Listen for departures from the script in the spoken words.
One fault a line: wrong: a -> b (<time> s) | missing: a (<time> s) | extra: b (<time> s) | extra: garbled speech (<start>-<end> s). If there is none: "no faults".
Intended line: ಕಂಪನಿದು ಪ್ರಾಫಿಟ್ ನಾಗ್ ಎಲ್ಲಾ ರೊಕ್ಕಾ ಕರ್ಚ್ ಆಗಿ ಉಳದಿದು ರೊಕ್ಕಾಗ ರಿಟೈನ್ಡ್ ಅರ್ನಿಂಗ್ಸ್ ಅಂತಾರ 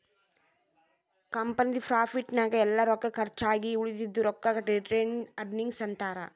no faults